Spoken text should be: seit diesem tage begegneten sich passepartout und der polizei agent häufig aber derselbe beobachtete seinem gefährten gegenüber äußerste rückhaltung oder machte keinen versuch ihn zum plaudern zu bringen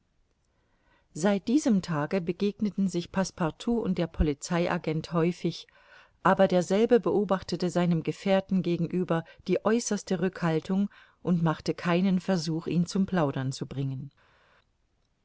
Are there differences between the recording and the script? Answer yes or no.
yes